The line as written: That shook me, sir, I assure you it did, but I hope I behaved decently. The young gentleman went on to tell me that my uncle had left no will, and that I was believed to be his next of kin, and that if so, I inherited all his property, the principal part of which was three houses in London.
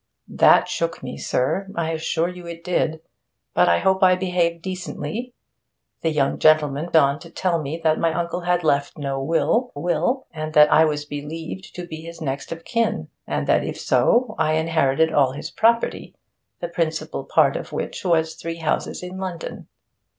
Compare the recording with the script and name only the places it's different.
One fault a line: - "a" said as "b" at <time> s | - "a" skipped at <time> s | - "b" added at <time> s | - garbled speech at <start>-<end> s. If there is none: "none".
- "went" skipped at 6.9 s
- "will" added at 9.8 s